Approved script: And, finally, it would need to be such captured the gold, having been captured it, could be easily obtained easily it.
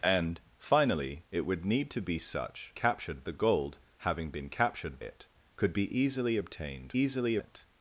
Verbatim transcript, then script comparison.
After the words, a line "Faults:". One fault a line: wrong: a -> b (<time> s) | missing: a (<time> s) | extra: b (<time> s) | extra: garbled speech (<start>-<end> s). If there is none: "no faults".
And, finally, it would need to be such captured the gold, having been captured it, could be easily obtained easily it.
Faults:
no faults